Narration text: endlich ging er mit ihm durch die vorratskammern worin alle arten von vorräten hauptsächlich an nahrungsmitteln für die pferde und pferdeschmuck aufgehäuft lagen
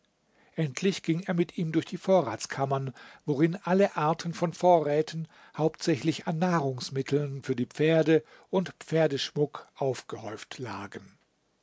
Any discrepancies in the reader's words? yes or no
no